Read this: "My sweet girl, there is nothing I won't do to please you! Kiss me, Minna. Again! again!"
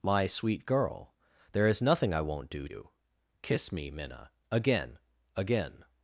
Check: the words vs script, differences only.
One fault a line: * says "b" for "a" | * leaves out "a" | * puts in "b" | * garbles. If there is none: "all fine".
* leaves out "to please"